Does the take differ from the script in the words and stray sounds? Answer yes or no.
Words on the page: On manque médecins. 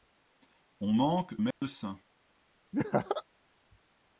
yes